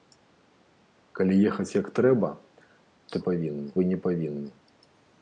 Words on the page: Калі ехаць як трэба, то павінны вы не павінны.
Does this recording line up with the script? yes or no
yes